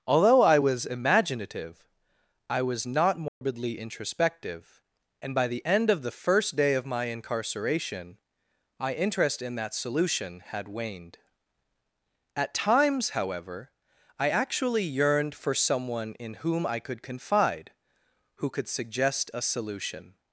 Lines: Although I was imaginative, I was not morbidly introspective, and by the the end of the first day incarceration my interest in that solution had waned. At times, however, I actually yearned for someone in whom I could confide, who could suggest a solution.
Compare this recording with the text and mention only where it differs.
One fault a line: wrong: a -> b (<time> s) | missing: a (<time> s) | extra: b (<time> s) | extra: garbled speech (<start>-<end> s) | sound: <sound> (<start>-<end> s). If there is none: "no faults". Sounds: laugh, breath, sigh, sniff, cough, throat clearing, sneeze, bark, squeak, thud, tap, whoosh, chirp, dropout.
sound: dropout (3.3-3.4 s)
missing: the (5.6 s)
extra: of my (6.7 s)